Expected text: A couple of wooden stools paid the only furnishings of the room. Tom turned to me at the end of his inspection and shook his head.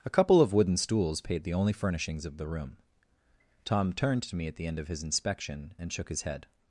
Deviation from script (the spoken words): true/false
false